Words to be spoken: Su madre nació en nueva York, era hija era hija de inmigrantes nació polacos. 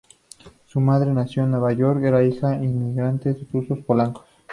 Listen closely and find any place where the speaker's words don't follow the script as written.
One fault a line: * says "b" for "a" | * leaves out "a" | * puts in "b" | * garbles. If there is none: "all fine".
* leaves out "era hija"
* says "rusos" for "nació"